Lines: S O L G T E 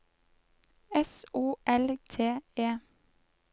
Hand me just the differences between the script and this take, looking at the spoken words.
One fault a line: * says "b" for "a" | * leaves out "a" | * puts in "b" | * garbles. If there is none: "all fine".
* leaves out "G"